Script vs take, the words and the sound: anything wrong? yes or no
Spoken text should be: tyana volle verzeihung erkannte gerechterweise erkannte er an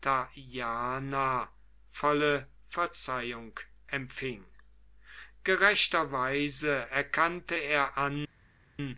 yes